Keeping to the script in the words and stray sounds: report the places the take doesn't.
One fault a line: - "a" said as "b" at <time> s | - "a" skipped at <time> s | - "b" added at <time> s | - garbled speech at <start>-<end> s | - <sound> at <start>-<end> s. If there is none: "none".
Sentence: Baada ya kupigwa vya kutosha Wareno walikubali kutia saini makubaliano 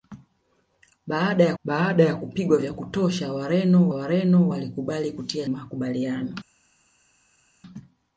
- "baada ya" added at 1.6 s
- "Wareno" added at 3.9 s
- "saini" skipped at 5.5 s